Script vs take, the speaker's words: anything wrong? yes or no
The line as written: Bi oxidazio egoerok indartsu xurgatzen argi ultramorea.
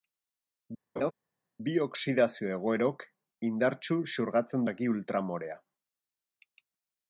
no